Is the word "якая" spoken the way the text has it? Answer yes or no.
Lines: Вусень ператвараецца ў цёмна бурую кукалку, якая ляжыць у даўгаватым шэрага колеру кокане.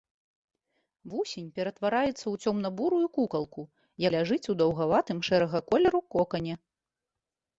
no